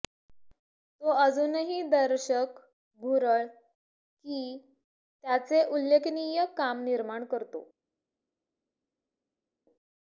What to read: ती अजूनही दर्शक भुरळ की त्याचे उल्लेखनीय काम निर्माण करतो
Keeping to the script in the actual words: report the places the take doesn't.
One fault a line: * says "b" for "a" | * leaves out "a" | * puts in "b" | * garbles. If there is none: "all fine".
* says "तो" for "ती"